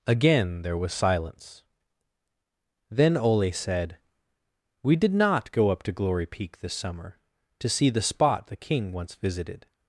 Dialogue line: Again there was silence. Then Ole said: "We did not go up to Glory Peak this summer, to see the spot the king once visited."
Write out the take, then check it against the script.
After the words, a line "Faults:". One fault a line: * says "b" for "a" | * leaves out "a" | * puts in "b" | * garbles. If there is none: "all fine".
Again there was silence. Then Ole said: "We did not go up to Glory Peak this summer, to see the spot the king once visited."
Faults:
all fine